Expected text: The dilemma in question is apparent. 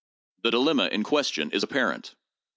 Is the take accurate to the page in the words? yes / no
yes